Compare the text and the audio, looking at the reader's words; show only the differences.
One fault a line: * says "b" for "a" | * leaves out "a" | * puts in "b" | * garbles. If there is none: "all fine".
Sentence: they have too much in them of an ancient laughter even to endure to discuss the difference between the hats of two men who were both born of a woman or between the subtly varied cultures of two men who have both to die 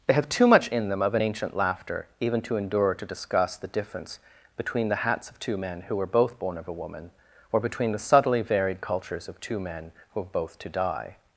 all fine